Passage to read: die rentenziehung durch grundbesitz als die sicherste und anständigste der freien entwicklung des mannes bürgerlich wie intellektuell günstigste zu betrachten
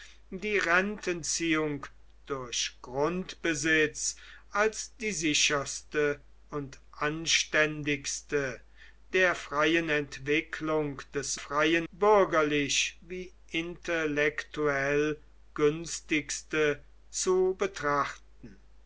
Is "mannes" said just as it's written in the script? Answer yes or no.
no